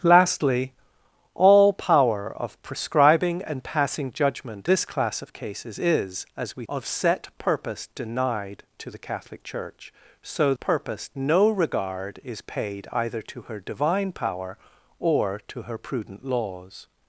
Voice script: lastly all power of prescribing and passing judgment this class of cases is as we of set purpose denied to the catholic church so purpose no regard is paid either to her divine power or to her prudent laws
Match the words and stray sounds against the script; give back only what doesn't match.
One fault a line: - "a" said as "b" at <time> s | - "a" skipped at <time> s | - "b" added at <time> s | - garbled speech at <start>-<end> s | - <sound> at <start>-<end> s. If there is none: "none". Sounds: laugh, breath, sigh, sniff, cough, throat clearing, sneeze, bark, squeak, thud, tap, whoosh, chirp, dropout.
none